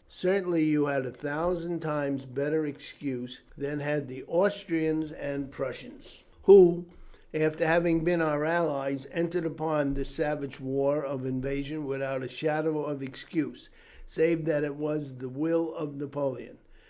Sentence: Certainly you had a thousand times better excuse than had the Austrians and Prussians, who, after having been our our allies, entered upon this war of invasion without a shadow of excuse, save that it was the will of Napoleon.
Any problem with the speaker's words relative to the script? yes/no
yes